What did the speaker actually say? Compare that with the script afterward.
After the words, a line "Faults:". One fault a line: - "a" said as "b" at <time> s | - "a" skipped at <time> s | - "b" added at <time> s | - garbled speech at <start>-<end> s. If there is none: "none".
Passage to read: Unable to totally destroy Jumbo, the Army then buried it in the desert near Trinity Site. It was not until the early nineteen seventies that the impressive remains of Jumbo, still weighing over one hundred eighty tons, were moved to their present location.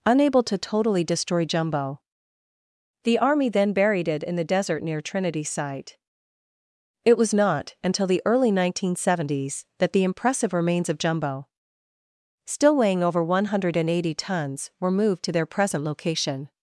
Unable to totally destroy Jumbo, the Army then buried it in the desert near Trinity Site. It was not until the early nineteen seventies that the impressive remains of Jumbo, still weighing over one hundred eighty tons, were moved to their present location.
Faults:
none